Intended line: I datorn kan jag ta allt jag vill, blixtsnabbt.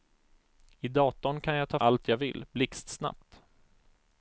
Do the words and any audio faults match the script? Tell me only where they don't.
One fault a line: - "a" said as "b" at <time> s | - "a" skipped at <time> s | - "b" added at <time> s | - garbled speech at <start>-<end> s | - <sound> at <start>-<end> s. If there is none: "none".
none